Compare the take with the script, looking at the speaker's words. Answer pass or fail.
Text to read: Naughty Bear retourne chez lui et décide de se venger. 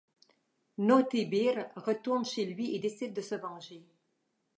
pass